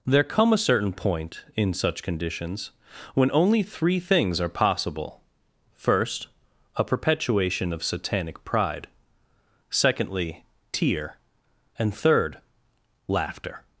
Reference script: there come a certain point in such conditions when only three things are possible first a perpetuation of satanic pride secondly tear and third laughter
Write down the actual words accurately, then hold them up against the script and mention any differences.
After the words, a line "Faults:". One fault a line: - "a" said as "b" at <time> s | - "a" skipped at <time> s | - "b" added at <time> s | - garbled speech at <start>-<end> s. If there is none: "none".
there come a certain point in such conditions when only three things are possible first a perpetuation of satanic pride secondly tear and third laughter
Faults:
none